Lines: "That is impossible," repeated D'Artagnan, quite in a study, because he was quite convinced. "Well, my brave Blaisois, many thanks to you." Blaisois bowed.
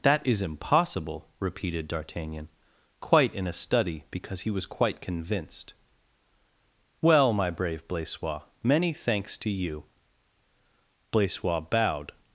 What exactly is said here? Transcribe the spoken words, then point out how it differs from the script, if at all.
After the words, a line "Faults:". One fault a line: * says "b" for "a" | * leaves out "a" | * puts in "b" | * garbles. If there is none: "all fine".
"That is impossible," repeated D'Artagnan, quite in a study, because he was quite convinced. "Well, my brave Blaisois, many thanks to you." Blaisois bowed.
Faults:
all fine